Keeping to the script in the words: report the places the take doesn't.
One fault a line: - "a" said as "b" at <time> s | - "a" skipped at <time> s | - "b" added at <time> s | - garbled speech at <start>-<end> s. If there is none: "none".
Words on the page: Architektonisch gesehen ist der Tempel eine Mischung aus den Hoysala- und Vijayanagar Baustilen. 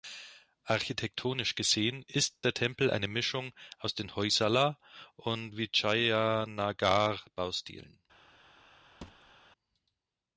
none